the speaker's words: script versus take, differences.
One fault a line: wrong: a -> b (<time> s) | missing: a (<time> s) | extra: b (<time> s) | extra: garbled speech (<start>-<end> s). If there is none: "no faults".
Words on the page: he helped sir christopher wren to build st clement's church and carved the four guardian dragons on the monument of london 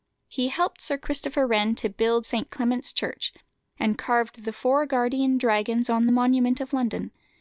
no faults